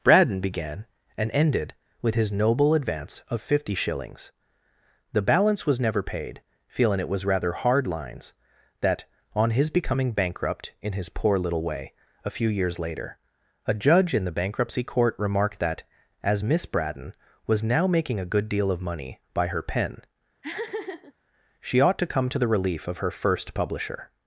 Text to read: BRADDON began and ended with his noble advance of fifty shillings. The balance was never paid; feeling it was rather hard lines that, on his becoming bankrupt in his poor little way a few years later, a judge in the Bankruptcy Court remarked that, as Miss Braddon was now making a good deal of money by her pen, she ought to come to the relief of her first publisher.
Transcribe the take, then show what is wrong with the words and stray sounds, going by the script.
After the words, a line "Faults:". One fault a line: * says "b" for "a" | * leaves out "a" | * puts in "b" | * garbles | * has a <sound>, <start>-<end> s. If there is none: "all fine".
BRADDON began and ended with his noble advance of fifty shillings. The balance was never paid; feeling it was rather hard lines that, on his becoming bankrupt in his poor little way a few years later, a judge in the Bankruptcy Court remarked that, as Miss Braddon was now making a good deal of money by her pen, she ought to come to the relief of her first publisher.
Faults:
* has a laugh, 20.4-21.1 s